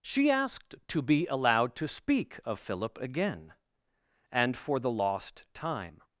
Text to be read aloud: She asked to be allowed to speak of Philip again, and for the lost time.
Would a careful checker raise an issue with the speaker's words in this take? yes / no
no